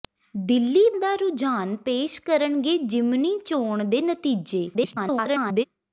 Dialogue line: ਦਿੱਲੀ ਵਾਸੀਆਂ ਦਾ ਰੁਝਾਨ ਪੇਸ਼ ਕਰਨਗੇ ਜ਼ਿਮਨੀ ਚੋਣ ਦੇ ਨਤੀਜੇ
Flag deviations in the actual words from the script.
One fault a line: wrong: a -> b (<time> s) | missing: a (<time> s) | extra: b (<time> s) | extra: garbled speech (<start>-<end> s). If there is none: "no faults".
missing: ਵਾਸੀਆਂ (0.8 s)
extra: garbled speech (4.7-5.6 s)